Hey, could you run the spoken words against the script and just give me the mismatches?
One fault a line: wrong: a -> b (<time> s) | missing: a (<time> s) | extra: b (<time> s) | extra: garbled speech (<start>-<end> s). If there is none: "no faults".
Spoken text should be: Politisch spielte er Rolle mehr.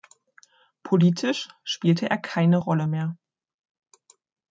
extra: keine (2.2 s)